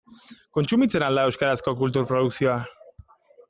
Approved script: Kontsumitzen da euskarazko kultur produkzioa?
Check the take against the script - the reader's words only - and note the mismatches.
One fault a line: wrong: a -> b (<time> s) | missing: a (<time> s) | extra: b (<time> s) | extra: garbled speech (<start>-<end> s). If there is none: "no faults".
extra: al (1.1 s)